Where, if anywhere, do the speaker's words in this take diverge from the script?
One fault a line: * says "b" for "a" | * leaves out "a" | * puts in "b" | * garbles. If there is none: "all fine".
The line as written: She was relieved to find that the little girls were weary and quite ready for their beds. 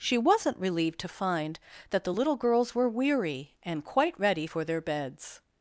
* says "wasn't" for "was"